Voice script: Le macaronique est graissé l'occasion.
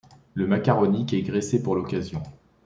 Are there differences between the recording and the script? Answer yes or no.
yes